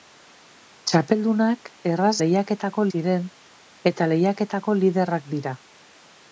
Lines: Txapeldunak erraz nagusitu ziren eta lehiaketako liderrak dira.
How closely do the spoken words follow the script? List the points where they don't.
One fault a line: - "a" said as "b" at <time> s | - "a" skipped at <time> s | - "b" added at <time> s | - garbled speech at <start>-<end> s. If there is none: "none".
- "nagusitu" said as "lehiaketako" at 2.2 s